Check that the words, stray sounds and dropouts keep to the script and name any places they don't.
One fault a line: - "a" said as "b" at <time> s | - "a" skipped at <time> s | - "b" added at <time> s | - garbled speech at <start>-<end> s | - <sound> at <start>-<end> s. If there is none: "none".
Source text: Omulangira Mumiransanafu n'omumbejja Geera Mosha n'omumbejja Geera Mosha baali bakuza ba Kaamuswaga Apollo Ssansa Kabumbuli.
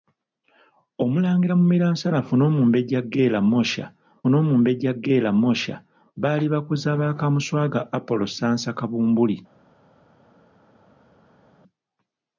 none